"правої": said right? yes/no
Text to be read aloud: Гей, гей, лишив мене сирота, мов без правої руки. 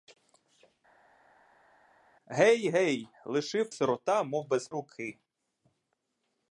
no